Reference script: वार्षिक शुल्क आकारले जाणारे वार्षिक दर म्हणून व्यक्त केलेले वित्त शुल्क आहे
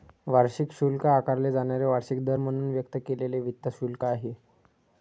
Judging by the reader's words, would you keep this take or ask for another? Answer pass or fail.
pass